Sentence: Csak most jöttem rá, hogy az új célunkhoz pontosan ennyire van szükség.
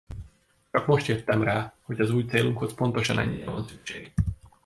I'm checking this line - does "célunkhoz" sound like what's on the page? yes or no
yes